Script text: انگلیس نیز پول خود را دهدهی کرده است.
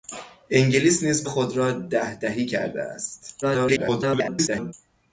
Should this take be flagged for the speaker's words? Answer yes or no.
yes